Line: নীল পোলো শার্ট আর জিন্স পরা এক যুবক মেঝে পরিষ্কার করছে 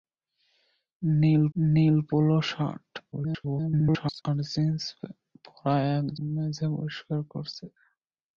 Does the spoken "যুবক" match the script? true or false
false